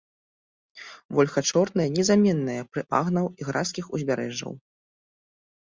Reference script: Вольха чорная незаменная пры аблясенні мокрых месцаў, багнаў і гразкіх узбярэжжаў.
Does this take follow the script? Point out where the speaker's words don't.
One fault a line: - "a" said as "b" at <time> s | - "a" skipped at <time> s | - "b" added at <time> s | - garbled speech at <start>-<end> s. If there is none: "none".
- "аблясенні мокрых месцаў" skipped at 2.8 s